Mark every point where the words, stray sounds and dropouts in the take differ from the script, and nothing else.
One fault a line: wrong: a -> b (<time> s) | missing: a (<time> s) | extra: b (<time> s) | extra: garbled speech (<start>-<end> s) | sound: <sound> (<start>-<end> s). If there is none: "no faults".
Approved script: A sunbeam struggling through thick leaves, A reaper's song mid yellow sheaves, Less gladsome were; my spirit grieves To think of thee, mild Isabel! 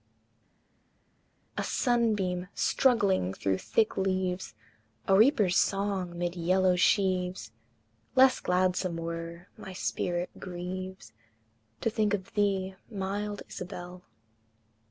no faults